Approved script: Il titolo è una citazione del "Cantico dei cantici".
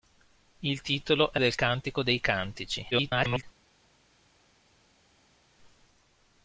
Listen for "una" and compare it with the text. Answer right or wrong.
wrong